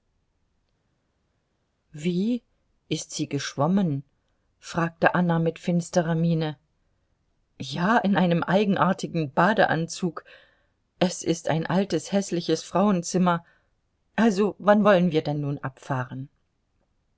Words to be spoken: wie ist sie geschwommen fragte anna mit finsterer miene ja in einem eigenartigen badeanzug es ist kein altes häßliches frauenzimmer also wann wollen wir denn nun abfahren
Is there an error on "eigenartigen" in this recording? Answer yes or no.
no